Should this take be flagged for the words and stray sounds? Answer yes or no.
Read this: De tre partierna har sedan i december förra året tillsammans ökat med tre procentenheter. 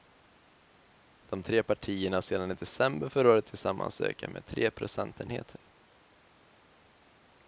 no